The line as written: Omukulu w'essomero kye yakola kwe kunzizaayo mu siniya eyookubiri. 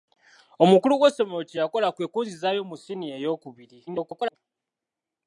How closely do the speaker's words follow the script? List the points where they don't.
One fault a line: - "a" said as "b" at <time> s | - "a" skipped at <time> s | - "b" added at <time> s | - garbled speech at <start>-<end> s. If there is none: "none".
- garbled speech at 3.9-4.4 s